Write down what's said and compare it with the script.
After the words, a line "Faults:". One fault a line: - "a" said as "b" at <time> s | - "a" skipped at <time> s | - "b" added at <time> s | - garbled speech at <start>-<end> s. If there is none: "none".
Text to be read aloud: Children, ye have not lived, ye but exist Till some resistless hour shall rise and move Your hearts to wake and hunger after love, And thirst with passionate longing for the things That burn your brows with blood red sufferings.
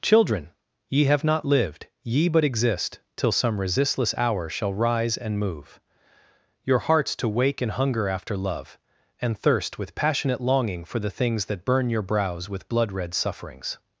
Children, ye have not lived, ye but exist Till some resistless hour shall rise and move Your hearts to wake and hunger after love, And thirst with passionate longing for the things That burn your brows with blood red sufferings.
Faults:
none